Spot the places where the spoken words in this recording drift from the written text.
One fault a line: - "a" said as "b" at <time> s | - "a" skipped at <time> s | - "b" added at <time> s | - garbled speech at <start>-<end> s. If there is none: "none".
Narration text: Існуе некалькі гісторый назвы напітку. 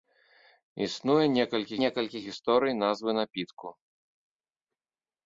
- "некалькі" added at 1.8 s